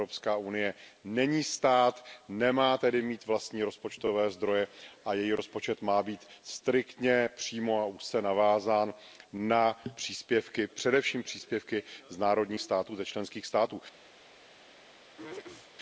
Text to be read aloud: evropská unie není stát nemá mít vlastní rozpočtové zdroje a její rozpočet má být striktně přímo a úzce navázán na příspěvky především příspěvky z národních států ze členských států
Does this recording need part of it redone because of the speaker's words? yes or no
yes